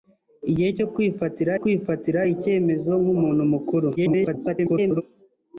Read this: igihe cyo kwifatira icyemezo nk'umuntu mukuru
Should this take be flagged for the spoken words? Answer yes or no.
yes